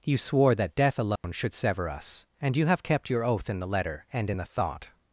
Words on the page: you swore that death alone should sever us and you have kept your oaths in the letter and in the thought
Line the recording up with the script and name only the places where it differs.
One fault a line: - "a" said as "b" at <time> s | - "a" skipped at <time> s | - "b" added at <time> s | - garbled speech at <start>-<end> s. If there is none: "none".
- "oaths" said as "oath" at 3.2 s